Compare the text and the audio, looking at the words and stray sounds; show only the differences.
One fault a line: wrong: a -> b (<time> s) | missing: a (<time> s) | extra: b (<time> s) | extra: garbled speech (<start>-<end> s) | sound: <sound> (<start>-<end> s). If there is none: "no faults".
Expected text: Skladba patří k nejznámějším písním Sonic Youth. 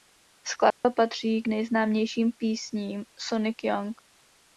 sound: dropout (0.7-0.8 s)